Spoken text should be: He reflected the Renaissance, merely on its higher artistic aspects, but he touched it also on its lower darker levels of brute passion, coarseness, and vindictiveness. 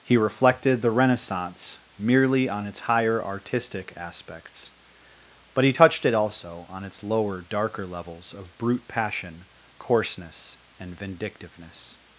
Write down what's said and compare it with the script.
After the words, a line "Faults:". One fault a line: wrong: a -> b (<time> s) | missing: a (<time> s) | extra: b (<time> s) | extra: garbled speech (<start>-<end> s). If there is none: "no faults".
He reflected the Renaissance, merely on its higher artistic aspects, but he touched it also on its lower darker levels of brute passion, coarseness, and vindictiveness.
Faults:
no faults